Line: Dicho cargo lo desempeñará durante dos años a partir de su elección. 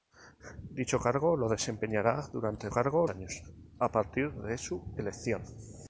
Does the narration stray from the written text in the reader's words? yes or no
yes